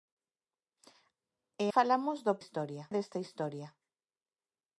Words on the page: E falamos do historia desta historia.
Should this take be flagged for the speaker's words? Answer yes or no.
no